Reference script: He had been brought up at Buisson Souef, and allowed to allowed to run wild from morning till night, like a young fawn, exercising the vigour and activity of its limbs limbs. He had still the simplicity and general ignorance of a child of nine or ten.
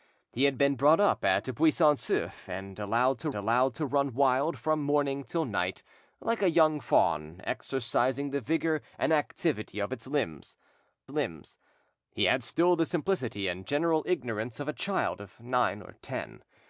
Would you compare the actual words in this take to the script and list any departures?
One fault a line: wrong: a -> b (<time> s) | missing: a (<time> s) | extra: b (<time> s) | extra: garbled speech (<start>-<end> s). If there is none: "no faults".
no faults